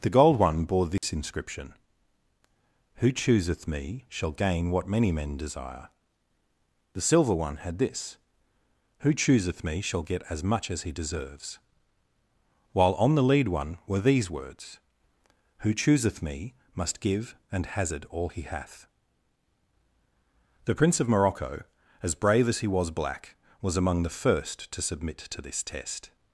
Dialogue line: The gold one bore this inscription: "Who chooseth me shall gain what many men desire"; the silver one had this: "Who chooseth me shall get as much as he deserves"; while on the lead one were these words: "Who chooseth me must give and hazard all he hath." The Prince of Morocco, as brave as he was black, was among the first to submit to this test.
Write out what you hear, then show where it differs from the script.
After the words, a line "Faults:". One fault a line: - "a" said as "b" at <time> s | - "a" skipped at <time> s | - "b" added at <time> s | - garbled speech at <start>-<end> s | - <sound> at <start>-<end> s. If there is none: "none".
The gold one bore this inscription: "Who chooseth me shall gain what many men desire"; the silver one had this: "Who chooseth me shall get as much as he deserves"; while on the lead one were these words: "Who chooseth me must give and hazard all he hath." The Prince of Morocco, as brave as he was black, was among the first to submit to this test.
Faults:
- dropout at 1.0-1.0 s